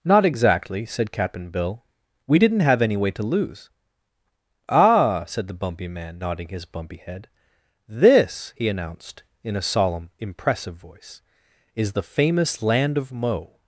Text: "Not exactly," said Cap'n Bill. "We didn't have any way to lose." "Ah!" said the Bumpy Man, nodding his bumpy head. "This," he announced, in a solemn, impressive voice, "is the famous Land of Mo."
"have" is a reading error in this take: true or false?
false